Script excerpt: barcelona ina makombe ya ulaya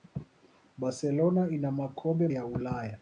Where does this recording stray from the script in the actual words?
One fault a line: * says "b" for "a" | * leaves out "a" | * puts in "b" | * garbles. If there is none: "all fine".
all fine